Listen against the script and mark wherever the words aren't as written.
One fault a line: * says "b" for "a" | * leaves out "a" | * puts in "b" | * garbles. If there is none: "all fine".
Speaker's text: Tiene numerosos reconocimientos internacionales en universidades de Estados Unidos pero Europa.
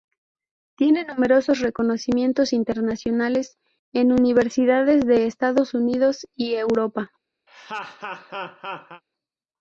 * says "y" for "pero"